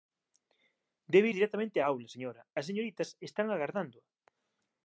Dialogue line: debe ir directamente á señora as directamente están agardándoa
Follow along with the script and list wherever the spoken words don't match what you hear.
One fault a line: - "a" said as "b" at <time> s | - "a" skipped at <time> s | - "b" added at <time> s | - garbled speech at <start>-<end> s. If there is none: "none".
- "aula" added at 1.8 s
- "directamente" said as "señoritas" at 2.7 s